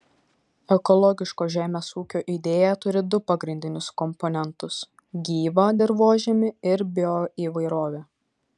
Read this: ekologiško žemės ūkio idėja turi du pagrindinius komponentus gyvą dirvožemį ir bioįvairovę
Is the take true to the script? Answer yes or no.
yes